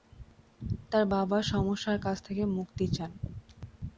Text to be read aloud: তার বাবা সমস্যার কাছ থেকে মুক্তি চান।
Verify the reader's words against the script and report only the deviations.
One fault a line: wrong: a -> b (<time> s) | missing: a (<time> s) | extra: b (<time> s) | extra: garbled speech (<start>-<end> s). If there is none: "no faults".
no faults